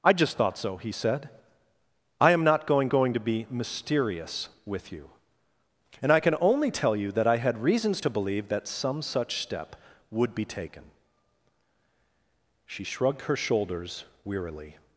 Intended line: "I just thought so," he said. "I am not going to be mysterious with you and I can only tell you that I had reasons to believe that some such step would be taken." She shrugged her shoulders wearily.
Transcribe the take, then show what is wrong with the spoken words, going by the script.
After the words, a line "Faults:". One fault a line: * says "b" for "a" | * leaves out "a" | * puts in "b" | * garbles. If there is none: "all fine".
"I just thought so," he said. "I am not going going to be mysterious with you and I can only tell you that I had reasons to believe that some such step would be taken." She shrugged her shoulders wearily.
Faults:
* puts in "going"